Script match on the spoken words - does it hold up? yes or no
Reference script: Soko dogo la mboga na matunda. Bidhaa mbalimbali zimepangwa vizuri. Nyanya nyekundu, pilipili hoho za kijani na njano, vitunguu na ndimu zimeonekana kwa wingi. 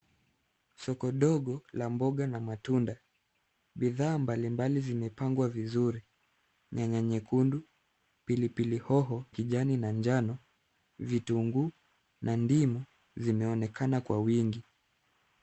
no